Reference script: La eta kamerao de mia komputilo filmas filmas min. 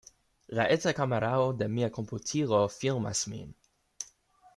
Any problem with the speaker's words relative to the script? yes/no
yes